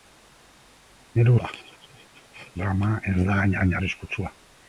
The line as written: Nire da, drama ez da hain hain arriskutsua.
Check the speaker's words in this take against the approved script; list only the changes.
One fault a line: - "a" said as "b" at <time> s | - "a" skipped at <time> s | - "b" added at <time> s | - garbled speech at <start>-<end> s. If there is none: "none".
none